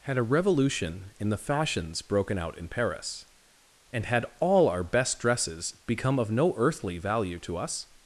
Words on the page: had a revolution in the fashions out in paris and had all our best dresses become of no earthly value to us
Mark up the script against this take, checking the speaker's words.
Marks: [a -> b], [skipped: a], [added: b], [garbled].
had a revolution in the fashions [added: broken] out in paris and had all our best dresses become of no earthly value to us